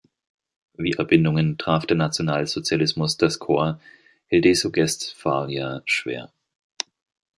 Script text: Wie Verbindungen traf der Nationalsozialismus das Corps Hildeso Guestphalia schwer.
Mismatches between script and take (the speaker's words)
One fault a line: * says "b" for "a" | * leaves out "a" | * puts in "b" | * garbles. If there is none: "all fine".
all fine